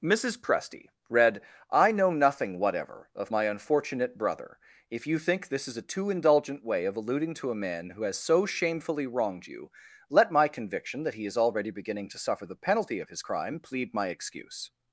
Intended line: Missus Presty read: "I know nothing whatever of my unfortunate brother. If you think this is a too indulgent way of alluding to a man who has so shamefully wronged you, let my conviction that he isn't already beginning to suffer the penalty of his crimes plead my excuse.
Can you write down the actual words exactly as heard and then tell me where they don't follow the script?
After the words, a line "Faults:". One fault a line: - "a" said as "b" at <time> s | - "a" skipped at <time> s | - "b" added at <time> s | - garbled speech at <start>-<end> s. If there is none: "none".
Missus Presty read: "I know nothing whatever of my unfortunate brother. If you think this is a too indulgent way of alluding to a man who has so shamefully wronged you, let my conviction that he is already beginning to suffer the penalty of his crime plead my excuse.
Faults:
- "isn't" said as "is" at 11.2 s
- "crimes" said as "crime" at 13.2 s